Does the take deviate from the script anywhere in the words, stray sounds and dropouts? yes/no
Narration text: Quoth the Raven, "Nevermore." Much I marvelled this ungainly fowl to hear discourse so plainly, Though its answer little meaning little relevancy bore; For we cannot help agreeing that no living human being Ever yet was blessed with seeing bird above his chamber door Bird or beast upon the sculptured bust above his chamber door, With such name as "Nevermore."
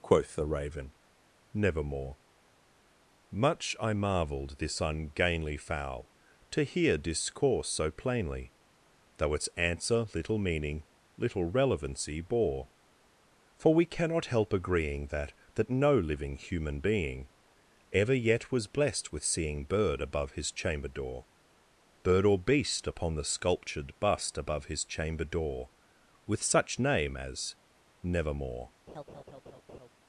yes